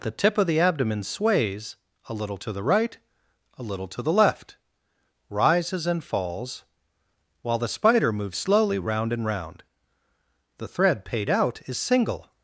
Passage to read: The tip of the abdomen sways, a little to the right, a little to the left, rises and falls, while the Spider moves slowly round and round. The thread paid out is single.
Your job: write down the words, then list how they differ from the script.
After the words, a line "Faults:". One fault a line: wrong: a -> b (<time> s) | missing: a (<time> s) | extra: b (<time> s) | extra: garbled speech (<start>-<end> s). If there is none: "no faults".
The tip of the abdomen sways, a little to the right, a little to the left, rises and falls, while the Spider moves slowly round and round. The thread paid out is single.
Faults:
no faults